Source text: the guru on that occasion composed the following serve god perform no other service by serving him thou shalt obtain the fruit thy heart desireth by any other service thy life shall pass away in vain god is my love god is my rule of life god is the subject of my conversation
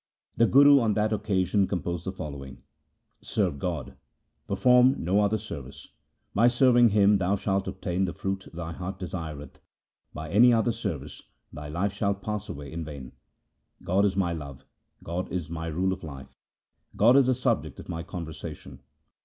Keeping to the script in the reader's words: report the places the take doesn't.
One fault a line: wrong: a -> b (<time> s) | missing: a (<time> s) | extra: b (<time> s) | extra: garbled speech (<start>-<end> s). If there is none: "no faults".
no faults